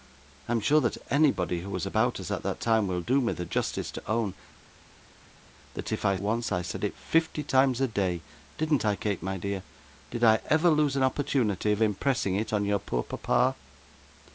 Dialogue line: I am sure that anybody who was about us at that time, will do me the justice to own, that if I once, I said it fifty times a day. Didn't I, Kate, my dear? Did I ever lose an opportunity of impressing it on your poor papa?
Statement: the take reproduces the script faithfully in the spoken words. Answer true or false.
true